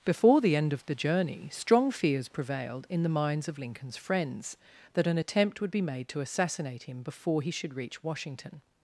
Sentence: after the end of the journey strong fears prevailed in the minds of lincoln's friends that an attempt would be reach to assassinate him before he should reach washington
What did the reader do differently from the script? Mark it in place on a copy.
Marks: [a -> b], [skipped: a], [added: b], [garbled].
[after -> before] the end of the journey strong fears prevailed in the minds of lincoln's friends that an attempt would be [reach -> made] to assassinate him before he should reach washington